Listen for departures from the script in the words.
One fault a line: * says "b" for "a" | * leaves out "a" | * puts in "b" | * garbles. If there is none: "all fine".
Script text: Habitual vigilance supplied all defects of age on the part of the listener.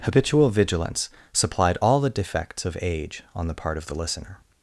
* puts in "the"